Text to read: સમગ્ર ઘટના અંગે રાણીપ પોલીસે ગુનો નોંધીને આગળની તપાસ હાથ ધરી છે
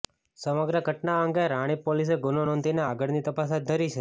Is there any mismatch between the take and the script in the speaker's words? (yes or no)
no